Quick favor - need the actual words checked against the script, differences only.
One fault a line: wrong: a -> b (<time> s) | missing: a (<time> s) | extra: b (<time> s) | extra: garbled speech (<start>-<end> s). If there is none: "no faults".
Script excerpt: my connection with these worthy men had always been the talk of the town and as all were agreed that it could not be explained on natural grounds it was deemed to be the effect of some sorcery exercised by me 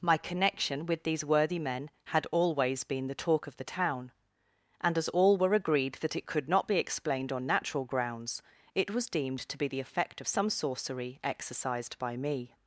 no faults